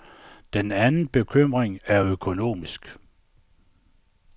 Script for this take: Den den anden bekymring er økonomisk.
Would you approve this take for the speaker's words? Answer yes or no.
no